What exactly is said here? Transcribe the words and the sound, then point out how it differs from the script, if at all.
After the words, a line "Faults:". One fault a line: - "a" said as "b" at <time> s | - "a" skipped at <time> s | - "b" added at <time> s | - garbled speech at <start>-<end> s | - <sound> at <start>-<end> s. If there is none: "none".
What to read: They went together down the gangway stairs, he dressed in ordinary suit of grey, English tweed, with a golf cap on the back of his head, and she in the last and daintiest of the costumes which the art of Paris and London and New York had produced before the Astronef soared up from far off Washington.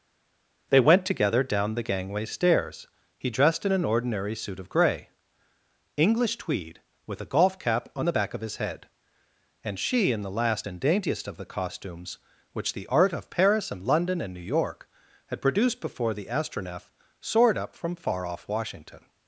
They went together down the gangway stairs, he dressed in an ordinary suit of grey, English tweed, with a golf cap on the back of his head, and she in the last and daintiest of the costumes which the art of Paris and London and New York had produced before the Astronef soared up from far off Washington.
Faults:
- "an" added at 3.7 s